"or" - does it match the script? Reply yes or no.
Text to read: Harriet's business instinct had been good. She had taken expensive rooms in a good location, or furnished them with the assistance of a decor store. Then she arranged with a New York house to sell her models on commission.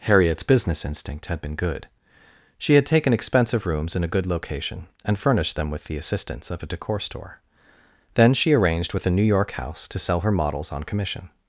no